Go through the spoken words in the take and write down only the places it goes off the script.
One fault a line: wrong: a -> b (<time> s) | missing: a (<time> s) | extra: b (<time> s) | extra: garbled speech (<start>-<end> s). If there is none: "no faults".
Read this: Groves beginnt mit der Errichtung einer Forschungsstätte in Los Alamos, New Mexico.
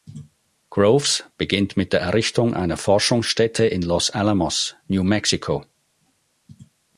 no faults